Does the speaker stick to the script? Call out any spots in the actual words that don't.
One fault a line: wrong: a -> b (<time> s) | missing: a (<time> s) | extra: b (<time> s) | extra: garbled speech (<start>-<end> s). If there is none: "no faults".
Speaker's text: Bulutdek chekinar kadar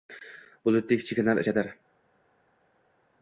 no faults